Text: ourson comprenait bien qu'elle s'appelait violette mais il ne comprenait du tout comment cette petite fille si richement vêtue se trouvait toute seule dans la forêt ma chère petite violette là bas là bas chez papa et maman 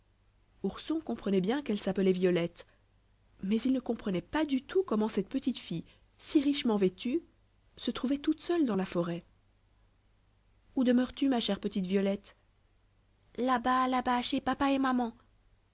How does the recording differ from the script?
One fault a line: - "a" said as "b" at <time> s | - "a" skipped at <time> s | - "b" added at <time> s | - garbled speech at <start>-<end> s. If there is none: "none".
- "pas" added at 4.2 s
- "où demeures tu" added at 10.7 s